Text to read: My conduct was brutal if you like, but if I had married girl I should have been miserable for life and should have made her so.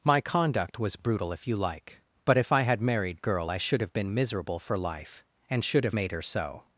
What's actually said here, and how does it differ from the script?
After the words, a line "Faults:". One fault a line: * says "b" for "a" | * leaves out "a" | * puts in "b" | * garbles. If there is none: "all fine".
My conduct was brutal if you like, but if I had married girl I should have been miserable for life and should have made her so.
Faults:
all fine